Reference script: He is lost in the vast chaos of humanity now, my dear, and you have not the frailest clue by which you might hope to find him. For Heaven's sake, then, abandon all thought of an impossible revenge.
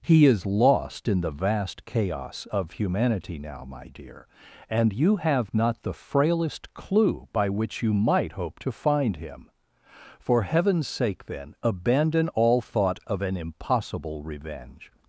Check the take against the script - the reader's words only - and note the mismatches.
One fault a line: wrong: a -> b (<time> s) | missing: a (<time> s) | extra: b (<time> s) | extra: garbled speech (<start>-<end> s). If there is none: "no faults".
no faults